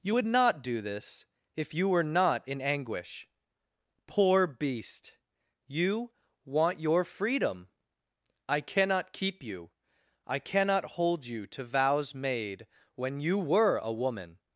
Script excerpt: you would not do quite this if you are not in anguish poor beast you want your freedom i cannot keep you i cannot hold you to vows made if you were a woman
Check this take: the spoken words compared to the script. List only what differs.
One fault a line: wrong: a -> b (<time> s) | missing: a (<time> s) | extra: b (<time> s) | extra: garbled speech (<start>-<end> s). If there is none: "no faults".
missing: quite (0.8 s)
wrong: are -> were (1.9 s)
wrong: if -> when (12.9 s)